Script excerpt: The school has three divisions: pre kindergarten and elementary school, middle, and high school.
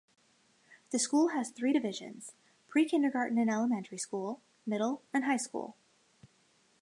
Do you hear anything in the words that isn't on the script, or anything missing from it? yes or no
no